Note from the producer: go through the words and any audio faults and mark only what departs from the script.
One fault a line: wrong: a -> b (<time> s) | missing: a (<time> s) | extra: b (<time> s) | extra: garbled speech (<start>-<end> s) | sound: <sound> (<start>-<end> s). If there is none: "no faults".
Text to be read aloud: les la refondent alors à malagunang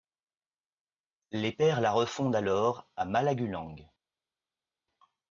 extra: pères (1.5 s)